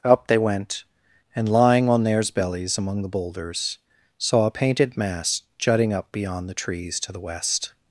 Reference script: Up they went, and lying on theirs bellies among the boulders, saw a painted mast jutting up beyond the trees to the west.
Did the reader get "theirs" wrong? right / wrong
right